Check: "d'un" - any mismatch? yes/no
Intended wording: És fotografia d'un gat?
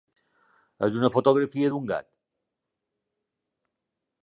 no